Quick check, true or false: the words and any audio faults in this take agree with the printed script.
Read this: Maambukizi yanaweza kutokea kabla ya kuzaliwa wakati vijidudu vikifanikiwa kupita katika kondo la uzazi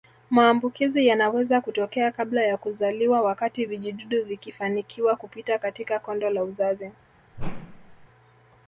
false